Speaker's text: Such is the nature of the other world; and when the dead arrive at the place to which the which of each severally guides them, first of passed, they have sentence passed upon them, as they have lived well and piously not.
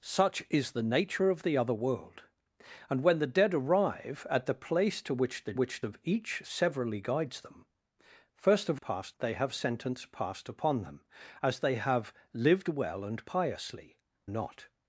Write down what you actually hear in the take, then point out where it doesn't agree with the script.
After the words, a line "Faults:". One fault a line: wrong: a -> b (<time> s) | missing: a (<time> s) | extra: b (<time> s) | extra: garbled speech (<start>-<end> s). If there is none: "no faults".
Such is the nature of the other world; and when the dead arrive at the place to which the which of each severally guides them, first of passed, they have sentence passed upon them, as they have lived well and piously not.
Faults:
no faults